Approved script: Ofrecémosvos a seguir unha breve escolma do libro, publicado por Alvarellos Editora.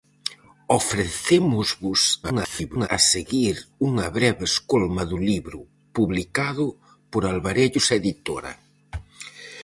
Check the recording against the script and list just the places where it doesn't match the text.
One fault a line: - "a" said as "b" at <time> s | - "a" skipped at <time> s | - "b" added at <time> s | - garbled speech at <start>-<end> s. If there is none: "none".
- garbled speech at 2.2-2.9 s